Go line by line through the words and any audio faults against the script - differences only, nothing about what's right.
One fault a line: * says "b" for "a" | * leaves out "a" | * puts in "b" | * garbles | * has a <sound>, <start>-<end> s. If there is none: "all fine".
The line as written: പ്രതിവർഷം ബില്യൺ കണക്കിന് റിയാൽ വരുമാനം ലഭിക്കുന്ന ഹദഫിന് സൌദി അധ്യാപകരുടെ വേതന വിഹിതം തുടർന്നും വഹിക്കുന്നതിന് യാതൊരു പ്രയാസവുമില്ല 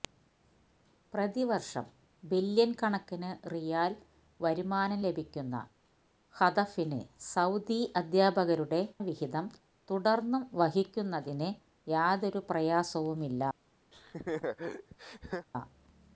* leaves out "വേതന"
* has a laugh, 13.9-15.5 s